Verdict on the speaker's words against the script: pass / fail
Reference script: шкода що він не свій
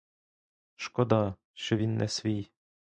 pass